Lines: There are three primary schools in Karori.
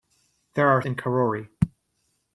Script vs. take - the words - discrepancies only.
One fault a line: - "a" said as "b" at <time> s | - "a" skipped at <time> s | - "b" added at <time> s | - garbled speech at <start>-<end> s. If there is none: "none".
- "three primary schools" skipped at 0.8 s